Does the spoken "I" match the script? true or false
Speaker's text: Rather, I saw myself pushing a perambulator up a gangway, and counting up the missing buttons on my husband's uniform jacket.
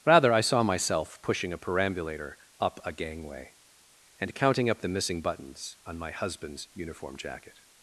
true